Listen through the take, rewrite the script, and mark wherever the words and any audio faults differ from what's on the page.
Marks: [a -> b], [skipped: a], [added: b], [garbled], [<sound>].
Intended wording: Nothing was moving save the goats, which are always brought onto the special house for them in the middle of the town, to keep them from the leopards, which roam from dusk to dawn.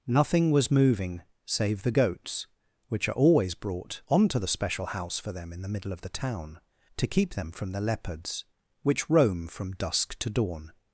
Nothing was moving save the goats, which are always brought onto the special house for them in the middle of the town, to keep them from the leopards, which roam from dusk to dawn.